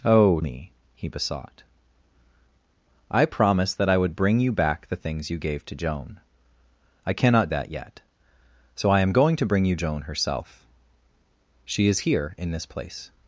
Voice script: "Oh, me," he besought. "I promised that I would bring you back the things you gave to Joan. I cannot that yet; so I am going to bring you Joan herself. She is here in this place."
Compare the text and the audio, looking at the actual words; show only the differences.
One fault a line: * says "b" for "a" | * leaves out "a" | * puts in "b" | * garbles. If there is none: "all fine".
all fine